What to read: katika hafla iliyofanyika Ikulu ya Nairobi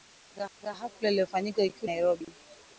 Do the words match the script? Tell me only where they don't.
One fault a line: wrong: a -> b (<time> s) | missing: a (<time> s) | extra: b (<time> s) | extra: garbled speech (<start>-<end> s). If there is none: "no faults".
extra: katika (0.6 s)
missing: ya (1.9 s)